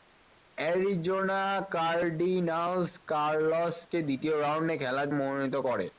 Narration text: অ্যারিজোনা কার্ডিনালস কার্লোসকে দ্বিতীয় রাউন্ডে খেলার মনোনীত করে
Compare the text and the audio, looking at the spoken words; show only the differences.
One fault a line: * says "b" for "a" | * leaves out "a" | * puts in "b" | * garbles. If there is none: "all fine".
all fine